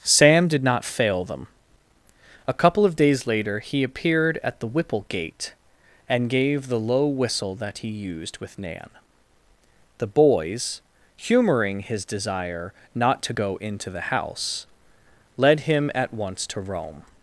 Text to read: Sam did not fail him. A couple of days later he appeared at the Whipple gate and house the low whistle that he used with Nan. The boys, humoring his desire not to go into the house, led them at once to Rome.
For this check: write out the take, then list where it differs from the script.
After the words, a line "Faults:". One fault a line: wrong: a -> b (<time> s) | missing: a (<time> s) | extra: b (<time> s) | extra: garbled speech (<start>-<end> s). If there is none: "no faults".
Sam did not fail them. A couple of days later he appeared at the Whipple gate and gave the low whistle that he used with Nan. The boys, humoring his desire not to go into the house, led him at once to Rome.
Faults:
wrong: him -> them (1.2 s)
wrong: house -> gave (6.3 s)
wrong: them -> him (15.6 s)